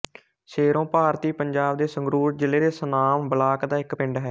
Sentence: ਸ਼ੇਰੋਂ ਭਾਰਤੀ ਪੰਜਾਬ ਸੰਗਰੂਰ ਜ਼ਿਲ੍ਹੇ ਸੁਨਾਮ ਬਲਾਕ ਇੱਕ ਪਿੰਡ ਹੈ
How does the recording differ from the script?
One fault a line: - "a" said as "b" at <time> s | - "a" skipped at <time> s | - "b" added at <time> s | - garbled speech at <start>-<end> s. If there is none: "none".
- "ਦੇ" added at 1.8 s
- "ਦੇ" added at 2.6 s
- "ਦਾ" added at 3.6 s